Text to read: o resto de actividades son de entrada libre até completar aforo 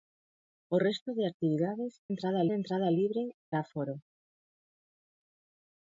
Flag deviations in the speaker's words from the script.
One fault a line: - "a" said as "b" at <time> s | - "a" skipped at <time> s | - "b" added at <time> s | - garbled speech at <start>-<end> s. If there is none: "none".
- "son" said as "entrada" at 2.1 s
- "até completar" skipped at 3.2 s